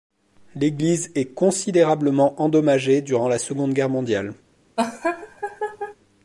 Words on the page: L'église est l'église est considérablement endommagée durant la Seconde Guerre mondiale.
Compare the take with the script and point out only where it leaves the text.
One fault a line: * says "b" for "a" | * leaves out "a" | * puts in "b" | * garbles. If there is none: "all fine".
* leaves out "l'église est"